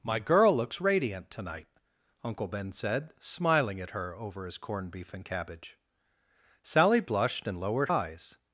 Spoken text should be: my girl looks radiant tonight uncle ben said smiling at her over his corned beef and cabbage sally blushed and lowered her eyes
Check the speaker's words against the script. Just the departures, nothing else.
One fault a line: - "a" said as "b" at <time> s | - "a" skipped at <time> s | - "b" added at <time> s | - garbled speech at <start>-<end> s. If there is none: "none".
- "her" skipped at 7.9 s